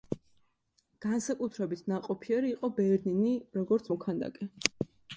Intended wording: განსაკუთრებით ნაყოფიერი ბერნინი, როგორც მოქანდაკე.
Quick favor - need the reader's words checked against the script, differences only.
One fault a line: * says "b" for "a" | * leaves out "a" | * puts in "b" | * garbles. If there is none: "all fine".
* puts in "იყო"